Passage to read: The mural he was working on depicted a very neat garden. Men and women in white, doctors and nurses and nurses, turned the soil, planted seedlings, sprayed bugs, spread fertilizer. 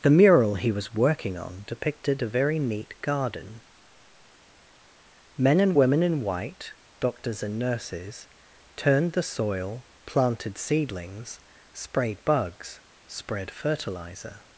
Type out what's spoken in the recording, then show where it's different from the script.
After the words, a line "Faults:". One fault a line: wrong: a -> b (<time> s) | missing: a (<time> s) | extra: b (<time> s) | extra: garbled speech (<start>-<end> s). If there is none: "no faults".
The mural he was working on depicted a very neat garden. Men and women in white, doctors and nurses, turned the soil, planted seedlings, sprayed bugs, spread fertilizer.
Faults:
missing: and nurses (8.3 s)